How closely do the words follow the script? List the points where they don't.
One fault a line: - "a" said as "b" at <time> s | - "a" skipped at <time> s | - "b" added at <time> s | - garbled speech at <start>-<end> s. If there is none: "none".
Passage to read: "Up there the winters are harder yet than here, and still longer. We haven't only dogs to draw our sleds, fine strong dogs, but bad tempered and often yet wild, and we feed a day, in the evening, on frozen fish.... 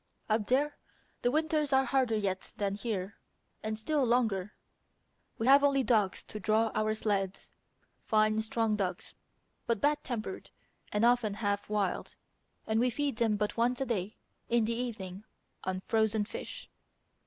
- "haven't" said as "have" at 5.4 s
- "yet" said as "half" at 11.3 s
- "them but once" added at 13.2 s